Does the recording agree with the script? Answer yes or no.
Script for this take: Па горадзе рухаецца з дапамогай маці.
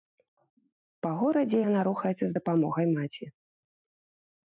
no